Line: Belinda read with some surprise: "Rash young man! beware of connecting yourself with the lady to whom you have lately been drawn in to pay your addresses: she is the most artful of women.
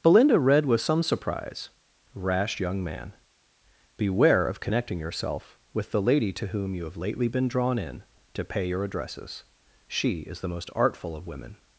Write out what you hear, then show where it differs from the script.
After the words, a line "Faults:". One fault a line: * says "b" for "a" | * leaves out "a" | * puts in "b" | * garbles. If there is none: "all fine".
Belinda read with some surprise: "Rash young man! beware of connecting yourself with the lady to whom you have lately been drawn in to pay your addresses: she is the most artful of women.
Faults:
all fine